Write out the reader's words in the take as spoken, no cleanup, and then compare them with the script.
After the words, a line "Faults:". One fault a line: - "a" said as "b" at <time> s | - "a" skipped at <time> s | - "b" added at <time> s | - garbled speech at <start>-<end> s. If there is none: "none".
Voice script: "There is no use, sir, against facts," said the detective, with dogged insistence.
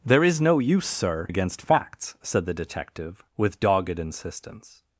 "There is no use, sir, against facts," said the detective, with dogged insistence.
Faults:
none